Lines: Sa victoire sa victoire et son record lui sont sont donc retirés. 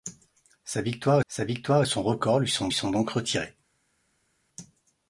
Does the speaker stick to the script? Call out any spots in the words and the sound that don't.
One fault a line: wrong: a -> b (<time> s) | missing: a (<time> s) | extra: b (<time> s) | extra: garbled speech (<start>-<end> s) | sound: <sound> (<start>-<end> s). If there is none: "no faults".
no faults